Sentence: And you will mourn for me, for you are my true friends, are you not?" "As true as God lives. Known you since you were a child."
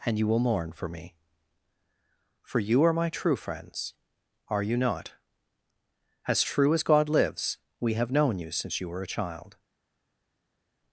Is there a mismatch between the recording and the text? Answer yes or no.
yes